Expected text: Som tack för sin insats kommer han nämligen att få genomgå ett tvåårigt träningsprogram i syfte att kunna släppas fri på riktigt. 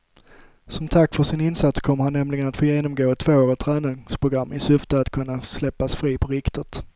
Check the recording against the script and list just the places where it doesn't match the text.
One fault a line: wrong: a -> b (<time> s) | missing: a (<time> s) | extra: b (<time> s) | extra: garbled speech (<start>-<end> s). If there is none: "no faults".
no faults